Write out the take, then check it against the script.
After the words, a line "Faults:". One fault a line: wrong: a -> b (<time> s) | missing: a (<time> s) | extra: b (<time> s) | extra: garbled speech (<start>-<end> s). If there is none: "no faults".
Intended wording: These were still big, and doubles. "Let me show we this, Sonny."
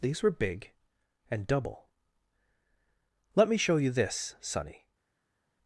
These were big, and double. "Let me show you this, Sonny."
Faults:
missing: still (0.3 s)
wrong: doubles -> double (1.5 s)
wrong: we -> you (3.8 s)